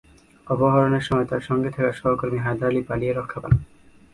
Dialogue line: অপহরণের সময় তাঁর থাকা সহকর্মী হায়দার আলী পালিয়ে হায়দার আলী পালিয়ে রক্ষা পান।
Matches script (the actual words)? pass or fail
fail